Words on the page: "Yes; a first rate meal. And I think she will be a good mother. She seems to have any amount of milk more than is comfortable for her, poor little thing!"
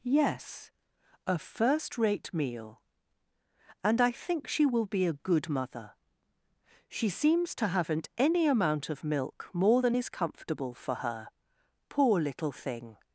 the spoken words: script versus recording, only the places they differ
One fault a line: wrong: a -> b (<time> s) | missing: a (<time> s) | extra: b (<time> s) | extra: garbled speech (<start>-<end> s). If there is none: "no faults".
wrong: have -> haven't (7.7 s)